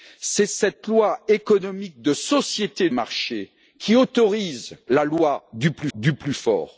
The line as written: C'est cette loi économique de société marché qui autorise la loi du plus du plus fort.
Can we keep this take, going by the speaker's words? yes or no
yes